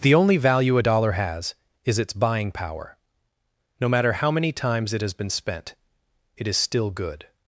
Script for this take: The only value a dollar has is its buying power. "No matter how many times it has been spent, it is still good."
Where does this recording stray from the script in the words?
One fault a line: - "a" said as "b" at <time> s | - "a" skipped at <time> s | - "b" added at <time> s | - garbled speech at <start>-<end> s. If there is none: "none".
none